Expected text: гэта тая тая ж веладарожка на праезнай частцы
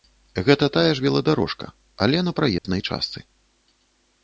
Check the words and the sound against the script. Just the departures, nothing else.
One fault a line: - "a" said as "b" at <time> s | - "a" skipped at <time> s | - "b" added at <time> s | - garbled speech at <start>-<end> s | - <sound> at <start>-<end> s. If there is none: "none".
- "тая" skipped at 0.9 s
- "але" added at 2.1 s
- dropout at 2.6-2.6 s